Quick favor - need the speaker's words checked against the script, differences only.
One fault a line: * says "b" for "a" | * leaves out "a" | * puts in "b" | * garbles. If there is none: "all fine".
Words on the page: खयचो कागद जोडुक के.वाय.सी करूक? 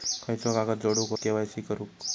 all fine